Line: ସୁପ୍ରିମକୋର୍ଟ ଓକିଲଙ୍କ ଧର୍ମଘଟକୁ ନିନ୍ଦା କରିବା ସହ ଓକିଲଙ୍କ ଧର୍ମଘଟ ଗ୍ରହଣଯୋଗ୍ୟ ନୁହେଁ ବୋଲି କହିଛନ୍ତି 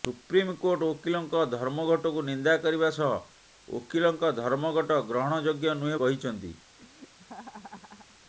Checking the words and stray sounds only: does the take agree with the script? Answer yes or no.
no